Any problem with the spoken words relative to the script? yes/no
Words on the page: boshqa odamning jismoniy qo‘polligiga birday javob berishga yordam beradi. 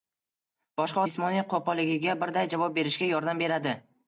yes